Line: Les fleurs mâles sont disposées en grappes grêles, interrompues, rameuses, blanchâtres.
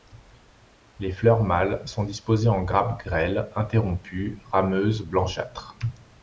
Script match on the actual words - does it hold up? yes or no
yes